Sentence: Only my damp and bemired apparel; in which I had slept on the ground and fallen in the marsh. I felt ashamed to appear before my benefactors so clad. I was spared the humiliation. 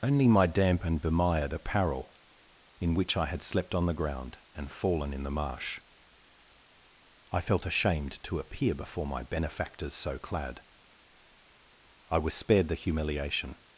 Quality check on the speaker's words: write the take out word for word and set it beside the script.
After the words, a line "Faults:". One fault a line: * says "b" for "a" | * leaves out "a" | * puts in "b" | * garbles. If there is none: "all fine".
Only my damp and bemired apparel; in which I had slept on the ground and fallen in the marsh. I felt ashamed to appear before my benefactors so clad. I was spared the humiliation.
Faults:
all fine